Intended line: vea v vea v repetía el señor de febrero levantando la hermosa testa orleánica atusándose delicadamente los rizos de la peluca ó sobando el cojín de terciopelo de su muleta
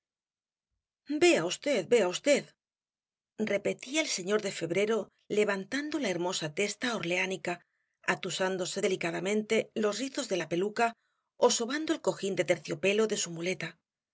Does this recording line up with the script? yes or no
yes